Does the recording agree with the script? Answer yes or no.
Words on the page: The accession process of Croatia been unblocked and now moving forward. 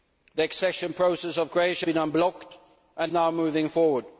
yes